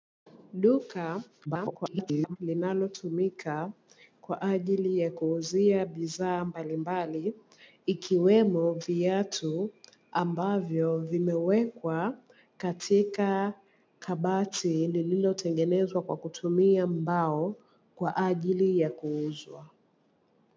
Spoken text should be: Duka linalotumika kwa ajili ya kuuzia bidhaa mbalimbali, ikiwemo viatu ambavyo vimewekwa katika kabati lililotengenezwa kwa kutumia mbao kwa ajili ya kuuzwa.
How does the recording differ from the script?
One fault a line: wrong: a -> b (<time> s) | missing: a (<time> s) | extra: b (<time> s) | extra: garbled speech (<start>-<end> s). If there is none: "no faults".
extra: garbled speech (1.4-2.4 s)